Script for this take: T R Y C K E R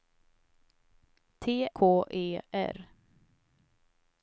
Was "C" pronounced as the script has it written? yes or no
no